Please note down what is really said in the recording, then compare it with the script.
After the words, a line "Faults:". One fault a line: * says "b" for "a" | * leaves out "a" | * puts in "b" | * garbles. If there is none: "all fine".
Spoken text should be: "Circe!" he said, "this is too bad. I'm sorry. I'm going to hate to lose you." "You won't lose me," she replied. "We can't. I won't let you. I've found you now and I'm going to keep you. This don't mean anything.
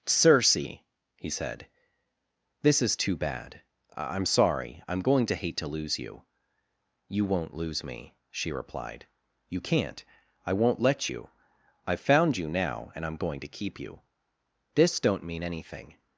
"Circe!" he said, "this is too bad. I'm sorry. I'm going to hate to lose you." "You won't lose me," she replied. "You can't. I won't let you. I've found you now and I'm going to keep you. This don't mean anything.
Faults:
* says "You" for "We"